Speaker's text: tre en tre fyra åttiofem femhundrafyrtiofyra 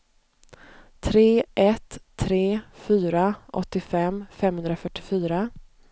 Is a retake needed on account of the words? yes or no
yes